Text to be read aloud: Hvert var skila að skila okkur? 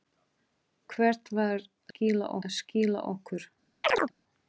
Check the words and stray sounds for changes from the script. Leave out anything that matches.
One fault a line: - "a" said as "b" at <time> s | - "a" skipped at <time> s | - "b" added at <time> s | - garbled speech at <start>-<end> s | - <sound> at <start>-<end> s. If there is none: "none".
- chirp at 3.8-4.1 s